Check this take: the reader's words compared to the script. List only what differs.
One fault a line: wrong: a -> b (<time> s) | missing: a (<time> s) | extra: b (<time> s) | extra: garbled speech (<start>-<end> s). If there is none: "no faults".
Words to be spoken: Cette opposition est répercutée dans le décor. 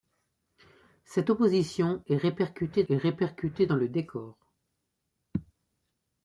extra: est répercutée (2.9 s)